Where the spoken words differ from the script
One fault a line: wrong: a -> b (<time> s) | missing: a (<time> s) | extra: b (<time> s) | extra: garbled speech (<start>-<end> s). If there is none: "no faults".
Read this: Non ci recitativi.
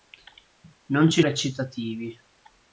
no faults